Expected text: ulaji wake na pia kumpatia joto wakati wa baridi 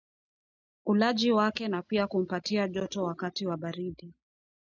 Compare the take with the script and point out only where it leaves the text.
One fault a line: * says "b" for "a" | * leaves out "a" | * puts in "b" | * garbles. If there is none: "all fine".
all fine